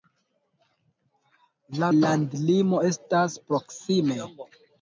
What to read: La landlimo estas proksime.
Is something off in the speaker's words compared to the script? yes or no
no